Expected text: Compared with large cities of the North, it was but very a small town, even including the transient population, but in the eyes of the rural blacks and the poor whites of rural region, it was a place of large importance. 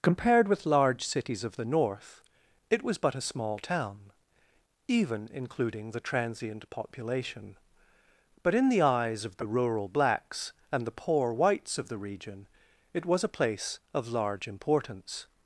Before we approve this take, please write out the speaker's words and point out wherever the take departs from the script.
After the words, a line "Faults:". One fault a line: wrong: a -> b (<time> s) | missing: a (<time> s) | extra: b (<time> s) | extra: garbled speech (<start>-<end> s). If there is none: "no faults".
Compared with large cities of the North, it was but a small town, even including the transient population, but in the eyes of the rural blacks and the poor whites of the region, it was a place of large importance.
Faults:
missing: very (3.1 s)
wrong: rural -> the (11.9 s)